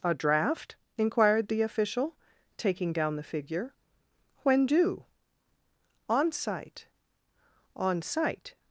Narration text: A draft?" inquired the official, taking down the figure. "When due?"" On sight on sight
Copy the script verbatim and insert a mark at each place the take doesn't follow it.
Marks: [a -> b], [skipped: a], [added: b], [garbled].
A draft?" inquired the official, taking down the figure. "When due?"" On sight on sight